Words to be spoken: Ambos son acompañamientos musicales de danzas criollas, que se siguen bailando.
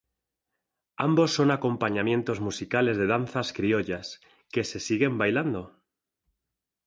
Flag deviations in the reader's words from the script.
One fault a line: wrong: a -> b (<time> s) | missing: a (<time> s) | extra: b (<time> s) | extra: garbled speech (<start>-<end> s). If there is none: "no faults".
no faults